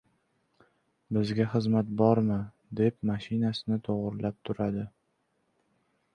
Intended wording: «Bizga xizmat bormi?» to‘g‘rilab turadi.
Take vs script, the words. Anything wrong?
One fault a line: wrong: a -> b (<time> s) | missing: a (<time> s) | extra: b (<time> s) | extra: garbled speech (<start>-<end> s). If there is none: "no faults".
extra: deb mashinasini (2.8 s)